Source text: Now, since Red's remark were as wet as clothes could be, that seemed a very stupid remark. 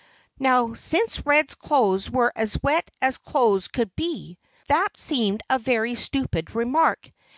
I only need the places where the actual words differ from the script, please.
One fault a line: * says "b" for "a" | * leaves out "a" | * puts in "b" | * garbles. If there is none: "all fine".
* says "clothes" for "remark"